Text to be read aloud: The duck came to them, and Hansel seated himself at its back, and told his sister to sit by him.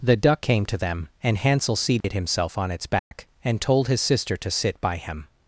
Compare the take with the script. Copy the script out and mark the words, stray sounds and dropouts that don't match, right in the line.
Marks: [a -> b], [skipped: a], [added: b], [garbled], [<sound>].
The duck came to them, and Hansel seated [dropout] himself [at -> on] its back, [dropout] and told his sister to sit by him.